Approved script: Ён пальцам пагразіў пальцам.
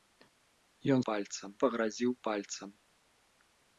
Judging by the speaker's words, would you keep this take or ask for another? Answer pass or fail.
pass